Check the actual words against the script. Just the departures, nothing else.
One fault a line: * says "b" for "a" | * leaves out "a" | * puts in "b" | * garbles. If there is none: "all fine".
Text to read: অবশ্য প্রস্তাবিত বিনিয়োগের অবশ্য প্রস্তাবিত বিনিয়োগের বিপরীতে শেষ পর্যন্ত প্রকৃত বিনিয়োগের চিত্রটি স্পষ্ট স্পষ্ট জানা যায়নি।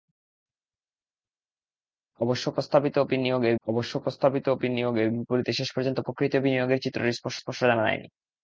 all fine